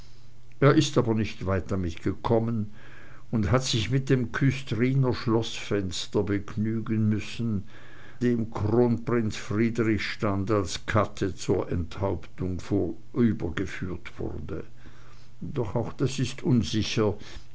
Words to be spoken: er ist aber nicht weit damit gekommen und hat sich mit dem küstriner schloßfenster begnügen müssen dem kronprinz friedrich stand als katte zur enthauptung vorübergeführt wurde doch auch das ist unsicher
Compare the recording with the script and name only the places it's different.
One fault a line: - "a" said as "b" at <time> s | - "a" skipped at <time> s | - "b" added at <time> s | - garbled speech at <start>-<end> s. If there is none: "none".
none